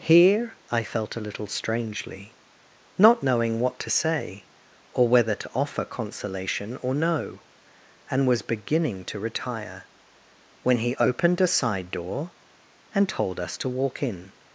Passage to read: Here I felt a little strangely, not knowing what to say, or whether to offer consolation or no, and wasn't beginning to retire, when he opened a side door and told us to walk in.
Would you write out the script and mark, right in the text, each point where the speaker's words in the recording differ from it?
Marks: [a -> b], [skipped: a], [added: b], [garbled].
Here I felt a little strangely, not knowing what to say, or whether to offer consolation or no, and [wasn't -> was] beginning to retire, when he opened a side door and told us to walk in.